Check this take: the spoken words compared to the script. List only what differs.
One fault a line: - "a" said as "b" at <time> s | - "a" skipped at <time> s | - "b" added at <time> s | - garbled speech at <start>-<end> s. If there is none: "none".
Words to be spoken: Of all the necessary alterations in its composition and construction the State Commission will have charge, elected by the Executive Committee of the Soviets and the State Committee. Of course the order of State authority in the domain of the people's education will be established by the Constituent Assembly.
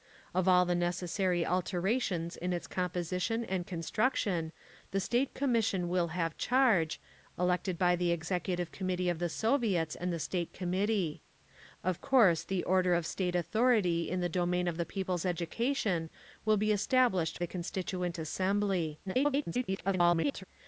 - "by" skipped at 17.4 s
- garbled speech at 19.1-20.4 s